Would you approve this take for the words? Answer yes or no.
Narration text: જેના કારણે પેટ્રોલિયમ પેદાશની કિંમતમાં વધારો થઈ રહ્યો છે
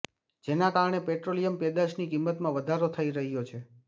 yes